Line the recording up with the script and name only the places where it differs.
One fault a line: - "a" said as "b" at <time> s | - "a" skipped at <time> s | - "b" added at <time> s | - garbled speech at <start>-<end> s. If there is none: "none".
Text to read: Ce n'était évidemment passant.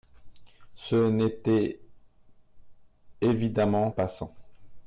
none